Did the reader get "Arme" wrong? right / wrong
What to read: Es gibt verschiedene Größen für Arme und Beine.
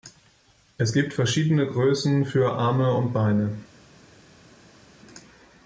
right